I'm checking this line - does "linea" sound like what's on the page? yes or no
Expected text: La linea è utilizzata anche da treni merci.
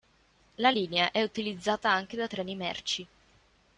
yes